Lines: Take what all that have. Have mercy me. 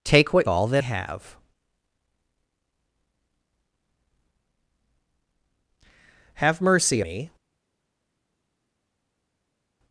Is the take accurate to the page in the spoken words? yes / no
yes